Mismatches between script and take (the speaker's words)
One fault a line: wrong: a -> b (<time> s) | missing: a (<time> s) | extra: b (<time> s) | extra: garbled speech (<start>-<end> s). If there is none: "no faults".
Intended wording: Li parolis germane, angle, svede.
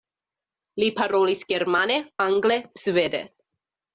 no faults